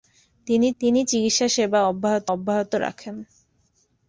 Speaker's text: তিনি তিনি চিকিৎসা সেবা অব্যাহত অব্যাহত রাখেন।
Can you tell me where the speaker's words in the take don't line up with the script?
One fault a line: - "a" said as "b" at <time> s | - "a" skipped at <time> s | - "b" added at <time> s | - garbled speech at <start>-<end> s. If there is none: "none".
none